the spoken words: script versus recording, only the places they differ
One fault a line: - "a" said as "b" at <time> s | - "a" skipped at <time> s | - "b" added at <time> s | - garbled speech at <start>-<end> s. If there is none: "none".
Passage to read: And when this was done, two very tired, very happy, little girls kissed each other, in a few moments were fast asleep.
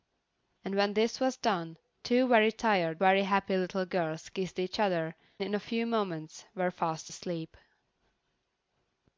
none